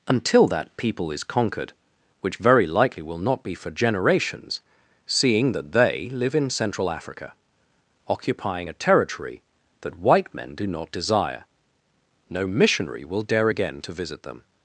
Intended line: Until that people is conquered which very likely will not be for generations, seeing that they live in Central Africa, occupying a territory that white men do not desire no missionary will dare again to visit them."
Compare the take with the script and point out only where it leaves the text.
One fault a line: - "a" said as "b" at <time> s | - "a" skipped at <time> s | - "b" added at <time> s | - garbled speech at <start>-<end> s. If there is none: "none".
none